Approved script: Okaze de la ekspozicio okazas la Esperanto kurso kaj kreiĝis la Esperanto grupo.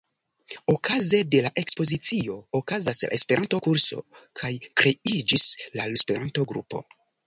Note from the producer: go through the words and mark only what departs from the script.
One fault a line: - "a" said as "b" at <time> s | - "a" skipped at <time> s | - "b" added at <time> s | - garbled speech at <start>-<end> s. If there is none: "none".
none